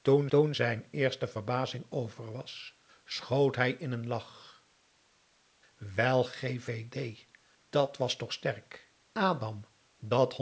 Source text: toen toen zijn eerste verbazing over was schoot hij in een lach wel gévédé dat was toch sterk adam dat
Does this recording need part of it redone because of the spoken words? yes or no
no